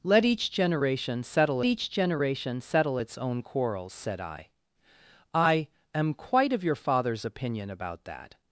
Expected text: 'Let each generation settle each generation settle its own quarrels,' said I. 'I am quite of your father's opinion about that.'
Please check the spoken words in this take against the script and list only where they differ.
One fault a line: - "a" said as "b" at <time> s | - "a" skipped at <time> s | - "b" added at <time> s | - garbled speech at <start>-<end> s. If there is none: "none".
none